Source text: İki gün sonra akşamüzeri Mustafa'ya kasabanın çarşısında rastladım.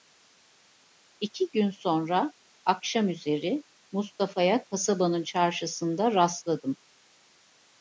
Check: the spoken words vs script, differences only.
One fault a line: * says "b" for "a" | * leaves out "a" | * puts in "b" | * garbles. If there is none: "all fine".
all fine